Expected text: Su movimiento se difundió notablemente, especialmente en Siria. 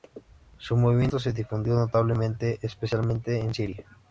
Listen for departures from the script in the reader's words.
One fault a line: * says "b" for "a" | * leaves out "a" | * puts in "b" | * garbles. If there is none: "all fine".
all fine